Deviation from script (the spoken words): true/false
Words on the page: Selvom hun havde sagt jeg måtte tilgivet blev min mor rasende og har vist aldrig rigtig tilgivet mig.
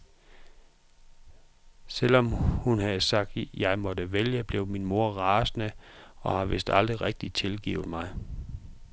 true